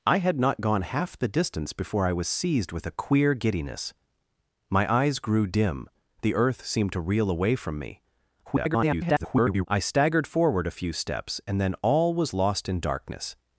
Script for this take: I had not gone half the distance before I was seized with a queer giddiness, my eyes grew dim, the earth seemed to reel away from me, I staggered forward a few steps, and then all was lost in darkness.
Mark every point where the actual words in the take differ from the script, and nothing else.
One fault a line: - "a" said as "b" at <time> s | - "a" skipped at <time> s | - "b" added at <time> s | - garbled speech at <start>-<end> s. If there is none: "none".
- garbled speech at 8.4-9.7 s